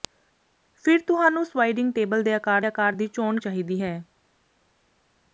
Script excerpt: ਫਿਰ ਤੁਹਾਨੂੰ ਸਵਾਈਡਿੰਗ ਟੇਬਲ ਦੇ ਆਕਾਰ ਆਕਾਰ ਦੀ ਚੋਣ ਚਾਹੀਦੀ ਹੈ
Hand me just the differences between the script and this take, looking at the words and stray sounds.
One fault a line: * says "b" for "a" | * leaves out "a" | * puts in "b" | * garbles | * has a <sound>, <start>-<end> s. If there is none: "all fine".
all fine